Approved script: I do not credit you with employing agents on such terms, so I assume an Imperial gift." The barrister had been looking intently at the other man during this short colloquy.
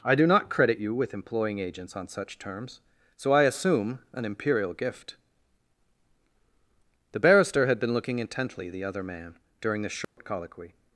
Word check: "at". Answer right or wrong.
wrong